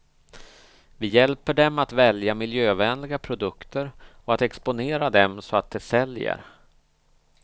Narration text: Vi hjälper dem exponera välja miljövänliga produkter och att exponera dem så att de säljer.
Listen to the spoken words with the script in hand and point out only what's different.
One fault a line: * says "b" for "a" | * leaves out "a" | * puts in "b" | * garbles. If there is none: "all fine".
* says "att" for "exponera"